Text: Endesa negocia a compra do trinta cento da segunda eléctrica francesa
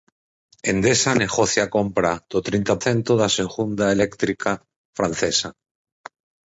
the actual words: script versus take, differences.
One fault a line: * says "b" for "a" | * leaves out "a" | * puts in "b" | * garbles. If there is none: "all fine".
all fine